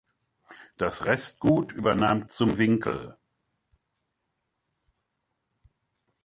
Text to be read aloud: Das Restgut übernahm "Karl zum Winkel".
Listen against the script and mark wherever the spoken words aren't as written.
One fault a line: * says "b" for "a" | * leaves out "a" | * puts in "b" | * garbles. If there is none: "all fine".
* leaves out "Karl"